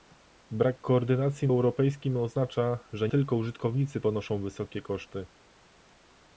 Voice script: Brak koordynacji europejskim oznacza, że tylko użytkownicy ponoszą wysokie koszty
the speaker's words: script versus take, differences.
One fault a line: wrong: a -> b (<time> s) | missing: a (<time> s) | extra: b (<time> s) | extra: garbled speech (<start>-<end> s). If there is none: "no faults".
no faults